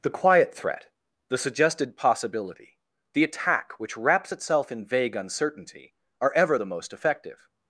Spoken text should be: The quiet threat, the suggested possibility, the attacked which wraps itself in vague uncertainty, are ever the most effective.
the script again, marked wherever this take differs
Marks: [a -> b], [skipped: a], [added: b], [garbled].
The quiet threat, the suggested possibility, the [attacked -> attack] which wraps itself in vague uncertainty, are ever the most effective.